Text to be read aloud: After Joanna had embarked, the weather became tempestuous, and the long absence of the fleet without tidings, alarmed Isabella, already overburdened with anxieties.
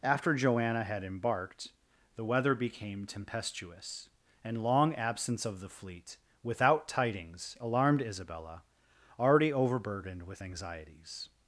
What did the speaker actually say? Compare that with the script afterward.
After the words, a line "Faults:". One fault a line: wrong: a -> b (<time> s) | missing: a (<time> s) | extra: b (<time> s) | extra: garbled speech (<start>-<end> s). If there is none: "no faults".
After Joanna had embarked, the weather became tempestuous, and long absence of the fleet without tidings, alarmed Isabella, already overburdened with anxieties.
Faults:
missing: the (4.6 s)